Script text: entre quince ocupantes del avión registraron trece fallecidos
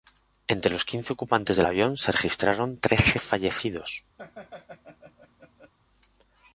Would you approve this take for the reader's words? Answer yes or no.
no